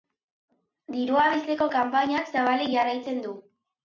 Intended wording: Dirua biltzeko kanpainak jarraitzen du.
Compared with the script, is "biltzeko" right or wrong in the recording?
right